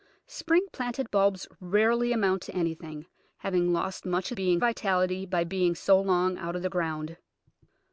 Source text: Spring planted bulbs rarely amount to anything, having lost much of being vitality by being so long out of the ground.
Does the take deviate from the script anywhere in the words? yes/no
no